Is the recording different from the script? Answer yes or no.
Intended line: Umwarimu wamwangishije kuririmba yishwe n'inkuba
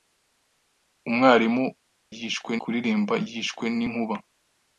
yes